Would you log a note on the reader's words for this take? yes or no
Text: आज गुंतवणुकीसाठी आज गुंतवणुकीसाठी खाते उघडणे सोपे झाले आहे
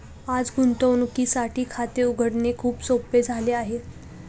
yes